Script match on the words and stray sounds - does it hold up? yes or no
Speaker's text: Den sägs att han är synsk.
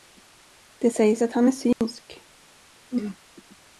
no